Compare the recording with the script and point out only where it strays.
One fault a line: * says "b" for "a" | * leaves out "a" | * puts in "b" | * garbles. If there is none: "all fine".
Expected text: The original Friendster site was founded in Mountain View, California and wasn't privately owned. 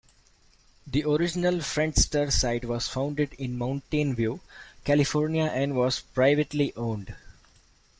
* says "was" for "wasn't"